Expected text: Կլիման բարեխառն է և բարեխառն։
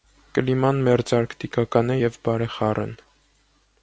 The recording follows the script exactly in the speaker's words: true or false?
false